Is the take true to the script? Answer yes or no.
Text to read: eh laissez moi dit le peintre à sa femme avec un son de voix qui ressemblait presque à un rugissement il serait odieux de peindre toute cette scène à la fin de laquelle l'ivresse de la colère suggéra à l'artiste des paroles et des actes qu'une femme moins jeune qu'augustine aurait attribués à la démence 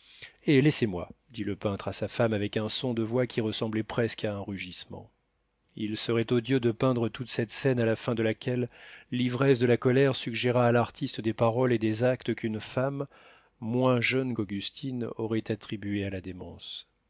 yes